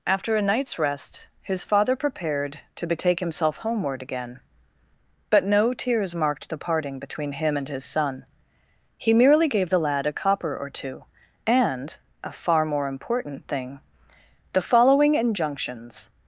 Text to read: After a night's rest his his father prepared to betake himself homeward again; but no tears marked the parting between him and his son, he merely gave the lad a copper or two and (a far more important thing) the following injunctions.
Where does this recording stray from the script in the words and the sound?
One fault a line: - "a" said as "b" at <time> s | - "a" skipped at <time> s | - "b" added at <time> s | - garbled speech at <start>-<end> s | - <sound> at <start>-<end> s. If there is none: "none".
- "his" skipped at 1.6 s